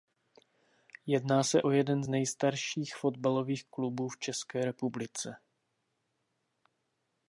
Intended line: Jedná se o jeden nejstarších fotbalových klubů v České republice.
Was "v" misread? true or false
false